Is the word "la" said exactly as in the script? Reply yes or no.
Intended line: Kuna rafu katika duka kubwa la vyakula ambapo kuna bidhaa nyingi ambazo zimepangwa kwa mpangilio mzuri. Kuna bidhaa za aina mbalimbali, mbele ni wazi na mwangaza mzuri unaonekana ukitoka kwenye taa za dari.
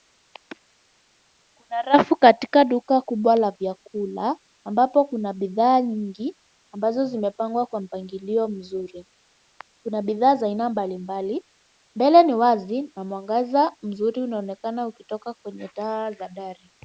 yes